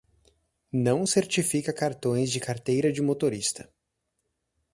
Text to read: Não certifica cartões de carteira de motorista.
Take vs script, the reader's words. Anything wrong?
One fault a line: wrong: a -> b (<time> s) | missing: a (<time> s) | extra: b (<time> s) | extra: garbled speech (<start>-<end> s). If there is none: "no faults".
no faults